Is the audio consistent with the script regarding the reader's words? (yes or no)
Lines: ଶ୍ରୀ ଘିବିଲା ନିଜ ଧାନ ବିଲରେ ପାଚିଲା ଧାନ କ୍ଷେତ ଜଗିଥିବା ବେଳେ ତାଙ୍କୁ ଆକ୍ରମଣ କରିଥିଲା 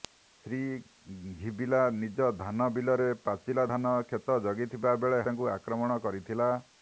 yes